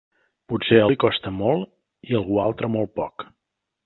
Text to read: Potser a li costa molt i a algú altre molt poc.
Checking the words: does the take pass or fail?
pass